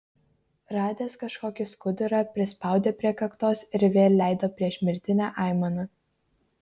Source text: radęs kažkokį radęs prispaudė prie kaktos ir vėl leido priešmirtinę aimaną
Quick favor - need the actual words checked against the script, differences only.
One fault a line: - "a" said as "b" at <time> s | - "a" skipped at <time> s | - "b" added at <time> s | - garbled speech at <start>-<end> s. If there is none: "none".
- "radęs" said as "skudurą" at 1.7 s